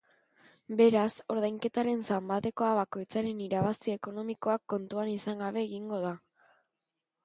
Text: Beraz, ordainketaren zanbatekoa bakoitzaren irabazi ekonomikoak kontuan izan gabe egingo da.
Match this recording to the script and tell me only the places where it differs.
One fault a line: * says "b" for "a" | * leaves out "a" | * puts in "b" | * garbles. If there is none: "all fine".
all fine